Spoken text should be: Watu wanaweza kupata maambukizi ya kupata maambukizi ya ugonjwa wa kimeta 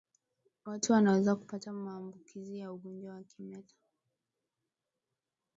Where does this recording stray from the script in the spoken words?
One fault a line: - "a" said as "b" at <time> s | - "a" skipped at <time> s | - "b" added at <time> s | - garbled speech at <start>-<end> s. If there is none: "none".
- "kupata maambukizi ya" skipped at 2.7 s